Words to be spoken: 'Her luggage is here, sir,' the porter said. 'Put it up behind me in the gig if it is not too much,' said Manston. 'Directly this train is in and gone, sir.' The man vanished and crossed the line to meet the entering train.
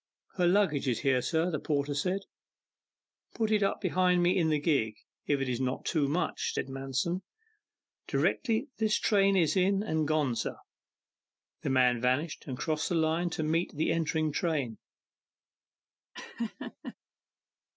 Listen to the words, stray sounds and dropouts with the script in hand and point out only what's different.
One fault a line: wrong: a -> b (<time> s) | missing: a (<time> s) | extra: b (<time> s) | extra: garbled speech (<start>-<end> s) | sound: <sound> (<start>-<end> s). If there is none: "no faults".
sound: laugh (16.1-16.9 s)